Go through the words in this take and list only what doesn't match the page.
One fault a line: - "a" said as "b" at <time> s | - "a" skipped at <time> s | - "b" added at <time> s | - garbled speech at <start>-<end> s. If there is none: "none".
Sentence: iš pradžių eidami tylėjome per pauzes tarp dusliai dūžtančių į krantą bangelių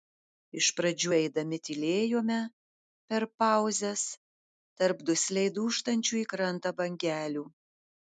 none